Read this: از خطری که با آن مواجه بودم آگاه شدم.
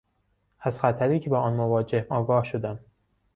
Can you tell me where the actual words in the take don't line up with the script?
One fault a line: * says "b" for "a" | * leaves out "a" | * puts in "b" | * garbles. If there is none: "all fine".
* leaves out "بودم"